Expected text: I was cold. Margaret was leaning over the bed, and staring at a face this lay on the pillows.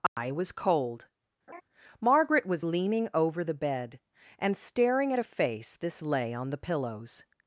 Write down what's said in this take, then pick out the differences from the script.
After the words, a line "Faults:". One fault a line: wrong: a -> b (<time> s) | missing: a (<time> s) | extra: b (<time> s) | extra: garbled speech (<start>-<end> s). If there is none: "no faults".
I was cold. Margaret was leaning over the bed, and staring at a face this lay on the pillows.
Faults:
no faults